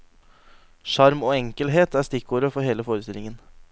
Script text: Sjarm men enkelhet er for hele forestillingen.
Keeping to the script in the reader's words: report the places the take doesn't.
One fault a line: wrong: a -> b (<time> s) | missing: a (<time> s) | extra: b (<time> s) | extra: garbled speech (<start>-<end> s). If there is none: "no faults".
wrong: men -> og (1.2 s)
extra: stikkordet (2.1 s)